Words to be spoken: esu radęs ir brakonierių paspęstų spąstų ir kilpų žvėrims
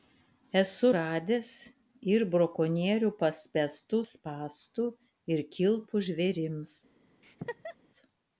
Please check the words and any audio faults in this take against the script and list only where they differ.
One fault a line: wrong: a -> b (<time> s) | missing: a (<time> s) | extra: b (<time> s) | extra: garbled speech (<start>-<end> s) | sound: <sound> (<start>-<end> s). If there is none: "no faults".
sound: laugh (7.2-7.8 s)